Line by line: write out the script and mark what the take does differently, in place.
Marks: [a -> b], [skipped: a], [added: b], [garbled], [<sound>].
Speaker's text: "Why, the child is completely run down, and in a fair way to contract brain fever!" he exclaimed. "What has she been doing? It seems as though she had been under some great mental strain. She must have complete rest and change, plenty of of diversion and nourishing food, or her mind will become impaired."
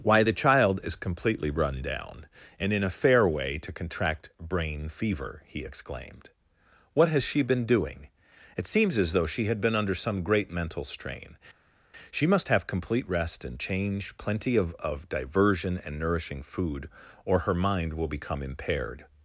"Why, the child is completely run down, and in a fair way to contract brain fever!" he exclaimed. "What has she been doing? It seems as though she had been under some great mental strain. She must have complete rest and change, plenty of of diversion and nourishing food, or her mind will become impaired."